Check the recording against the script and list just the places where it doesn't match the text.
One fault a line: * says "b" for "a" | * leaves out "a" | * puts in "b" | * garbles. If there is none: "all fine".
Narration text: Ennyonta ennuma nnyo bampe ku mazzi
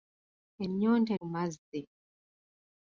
* leaves out "ennuma nnyo bampe"